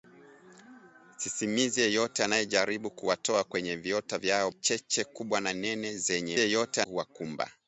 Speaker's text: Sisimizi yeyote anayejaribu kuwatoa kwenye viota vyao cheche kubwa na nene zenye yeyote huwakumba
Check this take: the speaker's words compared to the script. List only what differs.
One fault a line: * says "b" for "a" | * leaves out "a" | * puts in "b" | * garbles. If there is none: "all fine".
all fine